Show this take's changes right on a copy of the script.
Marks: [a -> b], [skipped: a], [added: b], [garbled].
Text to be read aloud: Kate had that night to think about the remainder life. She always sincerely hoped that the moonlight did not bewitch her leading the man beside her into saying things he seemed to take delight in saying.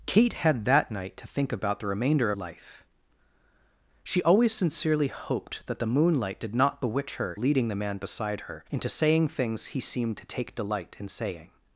Kate had that night to think about the remainder life. She always sincerely hoped that the moonlight did not bewitch her leading the man beside her into saying things he seemed to take delight in saying.